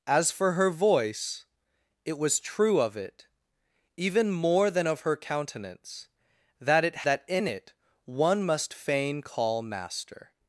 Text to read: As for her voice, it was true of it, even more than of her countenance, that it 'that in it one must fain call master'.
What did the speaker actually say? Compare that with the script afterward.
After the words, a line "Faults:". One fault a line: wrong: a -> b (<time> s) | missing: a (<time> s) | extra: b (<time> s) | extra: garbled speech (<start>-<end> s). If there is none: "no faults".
As for her voice, it was true of it, even more than of her countenance, that it 'that in it one must fain call master'.
Faults:
no faults